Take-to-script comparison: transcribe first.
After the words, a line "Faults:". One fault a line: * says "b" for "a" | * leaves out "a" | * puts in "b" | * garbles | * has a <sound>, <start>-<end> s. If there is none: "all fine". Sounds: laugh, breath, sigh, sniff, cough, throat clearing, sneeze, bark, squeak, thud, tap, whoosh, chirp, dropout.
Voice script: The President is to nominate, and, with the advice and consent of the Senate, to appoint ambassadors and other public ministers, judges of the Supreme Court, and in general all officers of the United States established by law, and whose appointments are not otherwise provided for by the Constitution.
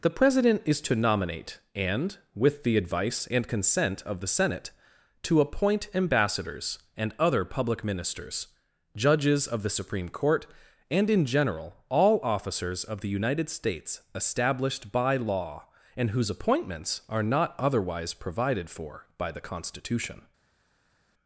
The President is to nominate, and, with the advice and consent of the Senate, to appoint ambassadors and other public ministers, judges of the Supreme Court, and in general all officers of the United States established by law, and whose appointments are not otherwise provided for by the Constitution.
Faults:
all fine